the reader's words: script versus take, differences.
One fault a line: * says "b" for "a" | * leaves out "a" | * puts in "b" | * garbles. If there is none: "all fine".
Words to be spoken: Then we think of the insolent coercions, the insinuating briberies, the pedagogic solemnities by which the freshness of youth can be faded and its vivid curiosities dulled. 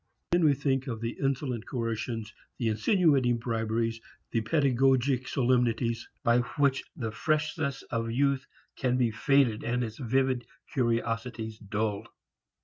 all fine